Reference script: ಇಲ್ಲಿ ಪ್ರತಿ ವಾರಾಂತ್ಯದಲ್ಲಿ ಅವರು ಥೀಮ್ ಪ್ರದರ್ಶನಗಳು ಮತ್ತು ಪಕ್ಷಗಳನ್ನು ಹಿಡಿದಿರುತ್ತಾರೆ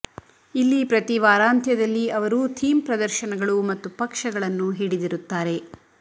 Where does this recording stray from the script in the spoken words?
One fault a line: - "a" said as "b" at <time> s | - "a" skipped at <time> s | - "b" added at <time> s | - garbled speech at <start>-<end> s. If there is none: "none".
none